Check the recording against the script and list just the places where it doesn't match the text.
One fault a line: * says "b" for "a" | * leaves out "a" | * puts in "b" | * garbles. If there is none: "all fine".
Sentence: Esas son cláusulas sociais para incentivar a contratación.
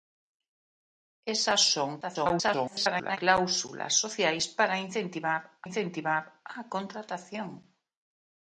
* garbles
* puts in "incentivar"